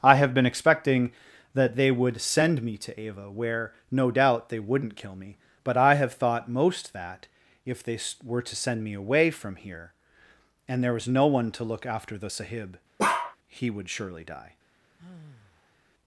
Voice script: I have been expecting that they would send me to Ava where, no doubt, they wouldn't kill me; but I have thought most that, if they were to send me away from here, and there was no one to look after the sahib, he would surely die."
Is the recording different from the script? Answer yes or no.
no